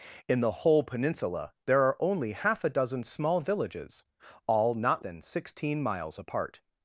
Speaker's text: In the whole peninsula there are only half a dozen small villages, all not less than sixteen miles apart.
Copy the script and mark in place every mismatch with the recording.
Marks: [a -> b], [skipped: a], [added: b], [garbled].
In the whole peninsula there are only half a dozen small villages, all not [skipped: less] than sixteen miles apart.